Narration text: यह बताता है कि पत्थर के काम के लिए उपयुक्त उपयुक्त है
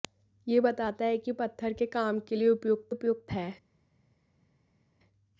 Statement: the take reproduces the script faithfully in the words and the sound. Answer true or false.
true